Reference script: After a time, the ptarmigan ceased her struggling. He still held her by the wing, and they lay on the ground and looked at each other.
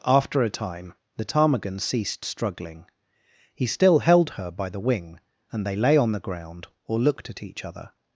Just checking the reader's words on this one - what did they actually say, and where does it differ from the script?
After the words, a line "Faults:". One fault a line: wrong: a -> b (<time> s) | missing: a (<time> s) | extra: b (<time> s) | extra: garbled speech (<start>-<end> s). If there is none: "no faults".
After a time, the ptarmigan ceased struggling. He still held her by the wing, and they lay on the ground or looked at each other.
Faults:
missing: her (2.2 s)
wrong: and -> or (6.8 s)